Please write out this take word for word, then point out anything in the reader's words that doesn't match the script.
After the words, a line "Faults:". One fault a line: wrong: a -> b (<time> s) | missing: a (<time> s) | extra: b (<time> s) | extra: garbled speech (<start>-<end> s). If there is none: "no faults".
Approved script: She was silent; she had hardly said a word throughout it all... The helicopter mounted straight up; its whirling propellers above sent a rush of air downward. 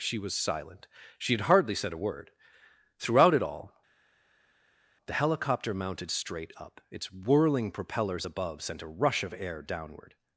She was silent; she had hardly said a word throughout it all... The helicopter mounted straight up; its whirling propellers above sent a rush of air downward.
Faults:
no faults